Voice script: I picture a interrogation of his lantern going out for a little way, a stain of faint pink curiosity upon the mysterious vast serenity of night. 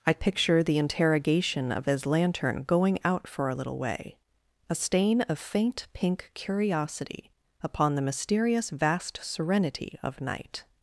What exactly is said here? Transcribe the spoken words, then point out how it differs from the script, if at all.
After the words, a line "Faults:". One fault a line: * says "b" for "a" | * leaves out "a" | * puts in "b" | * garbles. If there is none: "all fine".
I picture the interrogation of his lantern going out for a little way, a stain of faint pink curiosity upon the mysterious vast serenity of night.
Faults:
* says "the" for "a"